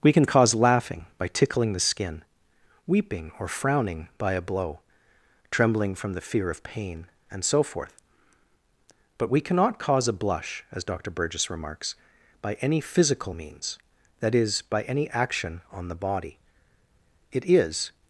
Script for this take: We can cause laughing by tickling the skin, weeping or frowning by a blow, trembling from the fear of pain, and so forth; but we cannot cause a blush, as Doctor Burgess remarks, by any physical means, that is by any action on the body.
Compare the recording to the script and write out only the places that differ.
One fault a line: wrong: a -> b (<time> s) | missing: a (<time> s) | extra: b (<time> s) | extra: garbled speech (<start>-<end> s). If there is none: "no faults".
extra: It is (17.3 s)